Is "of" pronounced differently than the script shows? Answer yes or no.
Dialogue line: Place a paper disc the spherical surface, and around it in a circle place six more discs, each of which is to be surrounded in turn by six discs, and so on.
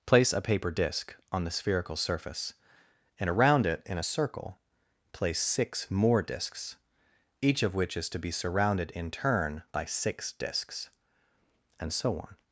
no